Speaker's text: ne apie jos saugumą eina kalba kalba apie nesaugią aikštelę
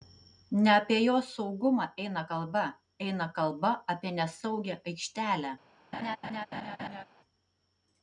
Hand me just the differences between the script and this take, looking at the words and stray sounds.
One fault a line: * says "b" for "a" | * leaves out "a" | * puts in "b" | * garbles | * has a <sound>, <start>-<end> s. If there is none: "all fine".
* puts in "eina"
* has a laugh, 5.9-7.0 s